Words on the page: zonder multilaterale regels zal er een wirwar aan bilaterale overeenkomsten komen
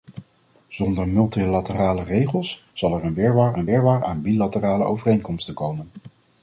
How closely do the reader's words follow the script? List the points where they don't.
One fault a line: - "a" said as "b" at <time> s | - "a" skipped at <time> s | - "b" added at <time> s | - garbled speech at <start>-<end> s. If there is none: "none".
- "een wirwar" added at 3.6 s